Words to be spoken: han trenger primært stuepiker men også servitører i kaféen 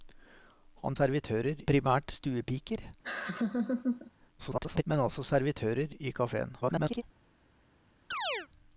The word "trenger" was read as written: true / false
false